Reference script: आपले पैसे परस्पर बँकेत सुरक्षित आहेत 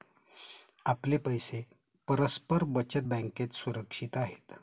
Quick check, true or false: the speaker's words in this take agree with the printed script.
false